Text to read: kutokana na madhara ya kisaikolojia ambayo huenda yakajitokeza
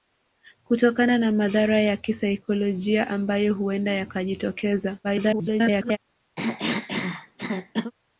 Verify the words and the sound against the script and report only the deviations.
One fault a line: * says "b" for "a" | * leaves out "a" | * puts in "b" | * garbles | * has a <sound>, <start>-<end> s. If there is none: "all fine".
* garbles
* has a cough, 6.4-7.9 s